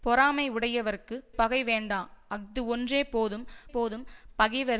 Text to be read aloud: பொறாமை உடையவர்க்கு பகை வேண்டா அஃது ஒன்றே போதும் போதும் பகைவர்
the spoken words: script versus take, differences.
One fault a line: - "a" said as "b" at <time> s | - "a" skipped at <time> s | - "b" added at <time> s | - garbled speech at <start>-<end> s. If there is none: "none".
none